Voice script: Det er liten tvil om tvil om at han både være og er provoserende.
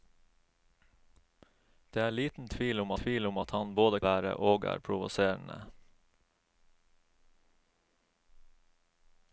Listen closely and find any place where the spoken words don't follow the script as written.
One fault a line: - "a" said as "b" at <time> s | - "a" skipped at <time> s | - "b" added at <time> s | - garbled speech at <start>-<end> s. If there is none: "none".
none